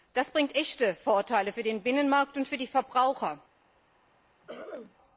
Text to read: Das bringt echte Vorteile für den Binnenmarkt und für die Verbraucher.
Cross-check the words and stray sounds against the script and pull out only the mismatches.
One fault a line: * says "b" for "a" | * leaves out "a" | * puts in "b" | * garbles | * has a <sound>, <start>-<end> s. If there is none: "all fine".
* has a throat clearing, 4.4-5.0 s